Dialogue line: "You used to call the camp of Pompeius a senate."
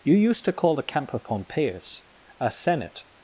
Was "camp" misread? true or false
false